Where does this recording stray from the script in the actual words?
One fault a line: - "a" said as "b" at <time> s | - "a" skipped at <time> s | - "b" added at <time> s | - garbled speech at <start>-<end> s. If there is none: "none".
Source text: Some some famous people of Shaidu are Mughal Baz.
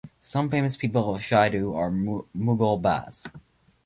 - "some" skipped at 0.5 s